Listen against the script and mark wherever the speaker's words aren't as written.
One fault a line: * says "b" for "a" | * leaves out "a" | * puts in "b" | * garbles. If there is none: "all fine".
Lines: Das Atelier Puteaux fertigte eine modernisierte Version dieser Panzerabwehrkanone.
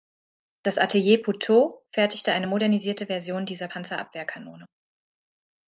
all fine